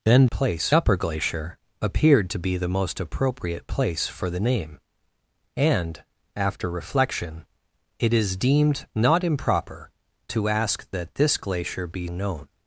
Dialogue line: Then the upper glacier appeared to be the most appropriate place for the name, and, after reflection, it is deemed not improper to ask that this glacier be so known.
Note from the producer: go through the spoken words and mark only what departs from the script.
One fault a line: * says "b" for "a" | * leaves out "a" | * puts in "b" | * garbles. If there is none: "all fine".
* says "place" for "the"
* leaves out "so"